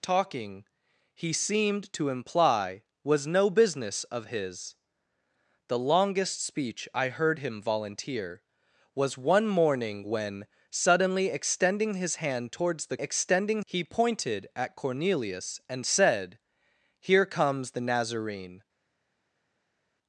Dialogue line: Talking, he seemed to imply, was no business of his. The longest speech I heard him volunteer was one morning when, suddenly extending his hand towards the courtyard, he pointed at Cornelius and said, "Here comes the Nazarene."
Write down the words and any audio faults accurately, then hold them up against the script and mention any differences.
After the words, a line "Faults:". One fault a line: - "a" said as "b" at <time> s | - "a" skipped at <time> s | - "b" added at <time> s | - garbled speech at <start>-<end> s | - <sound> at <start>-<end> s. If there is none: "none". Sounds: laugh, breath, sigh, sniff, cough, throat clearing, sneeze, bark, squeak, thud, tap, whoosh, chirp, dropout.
Talking, he seemed to imply, was no business of his. The longest speech I heard him volunteer was one morning when, suddenly extending his hand towards the extending, he pointed at Cornelius and said, "Here comes the Nazarene."
Faults:
- "courtyard" said as "extending" at 13.0 s